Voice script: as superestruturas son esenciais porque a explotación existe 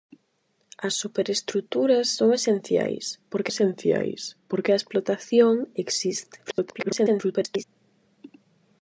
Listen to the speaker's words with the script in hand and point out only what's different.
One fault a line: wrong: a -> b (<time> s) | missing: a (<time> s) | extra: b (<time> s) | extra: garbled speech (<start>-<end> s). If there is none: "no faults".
extra: esenciais porque (3.5 s)
extra: garbled speech (6.4-7.6 s)